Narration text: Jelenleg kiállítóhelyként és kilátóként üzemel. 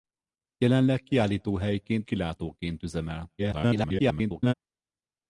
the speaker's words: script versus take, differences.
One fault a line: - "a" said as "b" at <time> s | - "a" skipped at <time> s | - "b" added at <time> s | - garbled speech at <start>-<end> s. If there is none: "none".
- "és" skipped at 2.1 s
- garbled speech at 3.4-4.5 s